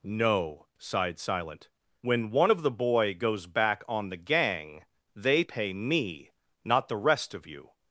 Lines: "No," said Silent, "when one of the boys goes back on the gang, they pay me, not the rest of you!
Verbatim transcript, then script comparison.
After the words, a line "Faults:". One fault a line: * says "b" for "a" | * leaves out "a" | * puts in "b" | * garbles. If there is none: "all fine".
"No," sighed Silent, "when one of the boy goes back on the gang, they pay me, not the rest of you!
Faults:
* says "sighed" for "said"
* says "boy" for "boys"